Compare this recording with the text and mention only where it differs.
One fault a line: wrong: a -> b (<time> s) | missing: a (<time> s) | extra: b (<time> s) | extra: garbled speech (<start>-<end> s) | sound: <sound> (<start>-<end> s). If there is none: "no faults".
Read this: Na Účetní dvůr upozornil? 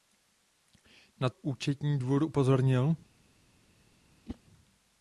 sound: whoosh (4.3-4.4 s)